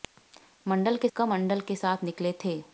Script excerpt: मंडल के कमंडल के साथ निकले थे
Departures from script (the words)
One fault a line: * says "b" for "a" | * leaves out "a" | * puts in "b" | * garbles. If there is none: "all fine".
all fine